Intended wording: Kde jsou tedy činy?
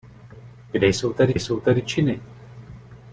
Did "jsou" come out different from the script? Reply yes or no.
no